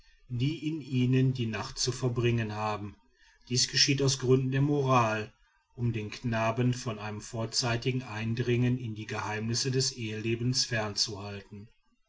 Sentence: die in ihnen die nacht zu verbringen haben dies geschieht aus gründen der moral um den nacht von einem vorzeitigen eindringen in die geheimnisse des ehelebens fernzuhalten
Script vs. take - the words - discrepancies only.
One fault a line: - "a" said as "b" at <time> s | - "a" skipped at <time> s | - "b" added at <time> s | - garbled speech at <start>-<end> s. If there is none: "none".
- "nacht" said as "knaben" at 6.1 s